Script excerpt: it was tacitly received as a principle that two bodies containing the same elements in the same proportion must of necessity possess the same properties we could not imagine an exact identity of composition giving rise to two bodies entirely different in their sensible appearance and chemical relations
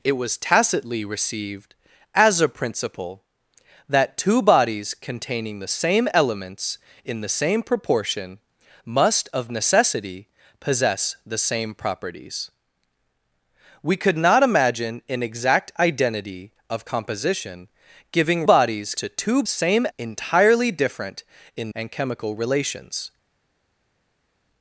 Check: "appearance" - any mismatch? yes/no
yes